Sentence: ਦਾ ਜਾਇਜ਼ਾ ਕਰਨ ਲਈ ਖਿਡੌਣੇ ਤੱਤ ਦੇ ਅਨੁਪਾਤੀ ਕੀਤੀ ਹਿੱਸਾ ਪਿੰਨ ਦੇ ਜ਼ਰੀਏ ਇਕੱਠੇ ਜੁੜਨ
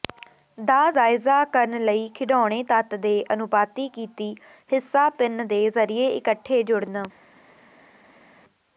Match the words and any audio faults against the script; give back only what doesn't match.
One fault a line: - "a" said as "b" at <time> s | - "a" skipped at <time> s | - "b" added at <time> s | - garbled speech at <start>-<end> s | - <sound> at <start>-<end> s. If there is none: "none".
none